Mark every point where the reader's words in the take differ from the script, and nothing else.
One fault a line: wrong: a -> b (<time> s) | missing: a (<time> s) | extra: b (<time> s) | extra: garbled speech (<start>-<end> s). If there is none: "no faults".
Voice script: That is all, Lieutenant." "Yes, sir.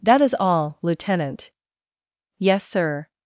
no faults